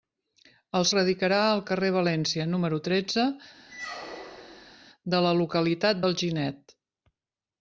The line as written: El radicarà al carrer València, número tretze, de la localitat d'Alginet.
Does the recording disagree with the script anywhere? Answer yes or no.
no